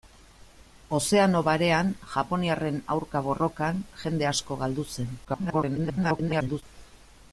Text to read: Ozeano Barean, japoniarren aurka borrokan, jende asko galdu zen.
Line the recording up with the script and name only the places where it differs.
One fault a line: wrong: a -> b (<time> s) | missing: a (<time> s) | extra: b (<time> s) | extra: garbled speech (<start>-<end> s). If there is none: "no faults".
extra: garbled speech (5.2-6.6 s)